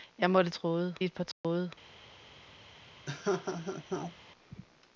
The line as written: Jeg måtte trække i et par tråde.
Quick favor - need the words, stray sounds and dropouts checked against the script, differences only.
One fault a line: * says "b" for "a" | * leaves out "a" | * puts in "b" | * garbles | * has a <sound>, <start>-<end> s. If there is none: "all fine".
* says "tråde" for "trække"
* has a dropout, 1.3-1.4 s
* has a laugh, 3.1-4.2 s